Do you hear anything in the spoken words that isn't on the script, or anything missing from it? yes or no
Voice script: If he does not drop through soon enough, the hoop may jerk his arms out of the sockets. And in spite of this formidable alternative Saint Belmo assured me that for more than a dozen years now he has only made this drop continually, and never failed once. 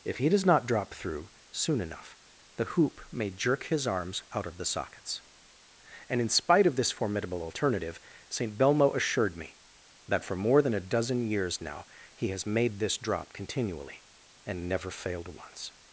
yes